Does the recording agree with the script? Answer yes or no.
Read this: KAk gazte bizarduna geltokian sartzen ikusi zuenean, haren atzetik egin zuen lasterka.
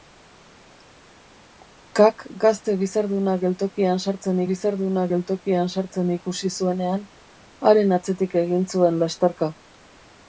no